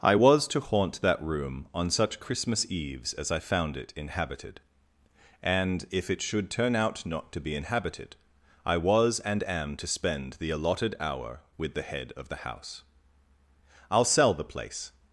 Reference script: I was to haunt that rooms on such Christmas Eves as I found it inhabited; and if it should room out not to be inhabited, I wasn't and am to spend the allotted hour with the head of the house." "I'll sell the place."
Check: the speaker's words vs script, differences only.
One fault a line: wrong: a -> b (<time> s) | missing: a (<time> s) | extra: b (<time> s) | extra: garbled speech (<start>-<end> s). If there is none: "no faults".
wrong: rooms -> room (1.2 s)
wrong: room -> turn (6.5 s)
wrong: wasn't -> was (8.8 s)